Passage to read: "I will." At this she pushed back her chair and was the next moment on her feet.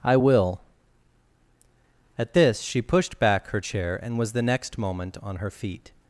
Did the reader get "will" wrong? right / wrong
right